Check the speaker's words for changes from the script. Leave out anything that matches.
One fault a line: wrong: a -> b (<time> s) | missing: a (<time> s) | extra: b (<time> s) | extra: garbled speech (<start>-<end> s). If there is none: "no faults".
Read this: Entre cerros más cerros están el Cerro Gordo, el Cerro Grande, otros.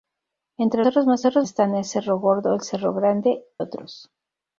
no faults